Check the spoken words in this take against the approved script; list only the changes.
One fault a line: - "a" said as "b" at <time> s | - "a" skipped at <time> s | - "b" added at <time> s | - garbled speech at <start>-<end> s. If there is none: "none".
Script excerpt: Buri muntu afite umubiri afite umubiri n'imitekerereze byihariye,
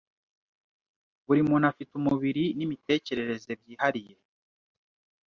- "afite umubiri" skipped at 2.4 s